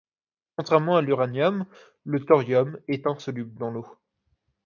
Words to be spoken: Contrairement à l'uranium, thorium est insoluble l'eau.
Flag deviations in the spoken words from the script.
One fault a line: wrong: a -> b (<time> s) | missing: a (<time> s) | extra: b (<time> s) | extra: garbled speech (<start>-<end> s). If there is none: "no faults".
extra: le (2.0 s)
extra: dans (3.6 s)